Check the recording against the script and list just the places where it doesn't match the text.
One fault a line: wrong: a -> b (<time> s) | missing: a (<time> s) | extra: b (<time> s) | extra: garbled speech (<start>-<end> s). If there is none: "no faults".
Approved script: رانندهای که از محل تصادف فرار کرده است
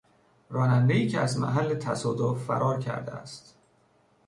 no faults